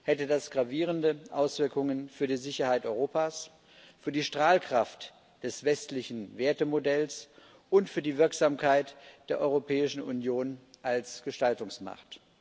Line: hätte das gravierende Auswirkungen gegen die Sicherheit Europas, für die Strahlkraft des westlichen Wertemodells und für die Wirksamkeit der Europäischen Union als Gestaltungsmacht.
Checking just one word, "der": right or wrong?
right